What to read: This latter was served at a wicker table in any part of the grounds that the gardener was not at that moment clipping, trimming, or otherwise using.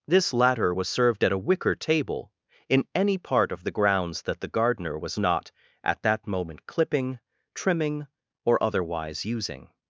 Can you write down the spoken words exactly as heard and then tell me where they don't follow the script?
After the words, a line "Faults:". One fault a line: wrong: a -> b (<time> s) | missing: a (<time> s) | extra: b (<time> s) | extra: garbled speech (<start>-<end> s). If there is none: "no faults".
This latter was served at a wicker table in any part of the grounds that the gardener was not at that moment clipping, trimming, or otherwise using.
Faults:
no faults